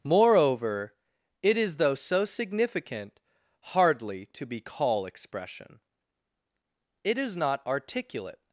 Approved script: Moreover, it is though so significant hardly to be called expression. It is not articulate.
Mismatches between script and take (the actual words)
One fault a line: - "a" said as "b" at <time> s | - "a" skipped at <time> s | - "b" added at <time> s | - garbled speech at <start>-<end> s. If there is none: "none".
- "called" said as "call" at 4.6 s